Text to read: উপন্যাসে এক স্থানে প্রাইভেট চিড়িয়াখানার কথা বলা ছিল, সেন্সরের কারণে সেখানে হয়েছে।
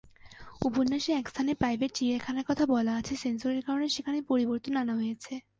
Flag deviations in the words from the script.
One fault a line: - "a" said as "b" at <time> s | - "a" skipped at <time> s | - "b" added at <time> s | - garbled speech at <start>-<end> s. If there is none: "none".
- "ছিল" said as "আছে" at 2.9 s
- "পরিবর্তন আনা" added at 4.2 s